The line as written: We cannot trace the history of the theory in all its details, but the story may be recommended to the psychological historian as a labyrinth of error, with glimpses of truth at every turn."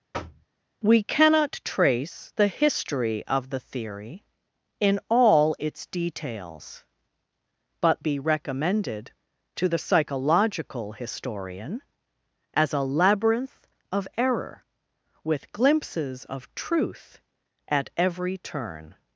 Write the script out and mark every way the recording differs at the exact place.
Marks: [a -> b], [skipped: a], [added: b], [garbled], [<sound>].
[thud] We cannot trace the history of the theory in all its details, but [skipped: the story may] be recommended to the psychological historian as a labyrinth of error, with glimpses of truth at every turn."